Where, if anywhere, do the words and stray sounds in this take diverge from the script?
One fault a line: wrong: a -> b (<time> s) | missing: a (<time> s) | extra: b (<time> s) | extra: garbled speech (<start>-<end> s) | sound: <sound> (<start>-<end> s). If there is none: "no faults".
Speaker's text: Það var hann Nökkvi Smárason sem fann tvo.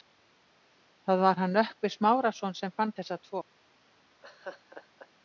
extra: þessa (3.0 s)
sound: laugh (4.2-5.1 s)